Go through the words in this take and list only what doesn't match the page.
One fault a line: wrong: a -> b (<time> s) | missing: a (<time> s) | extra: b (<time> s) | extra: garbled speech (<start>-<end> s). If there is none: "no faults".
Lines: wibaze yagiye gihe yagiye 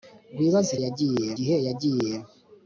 no faults